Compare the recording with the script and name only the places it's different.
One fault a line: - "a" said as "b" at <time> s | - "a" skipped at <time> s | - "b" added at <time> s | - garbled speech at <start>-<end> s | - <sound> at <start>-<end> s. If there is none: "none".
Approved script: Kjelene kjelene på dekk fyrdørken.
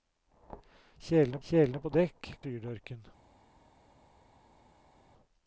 none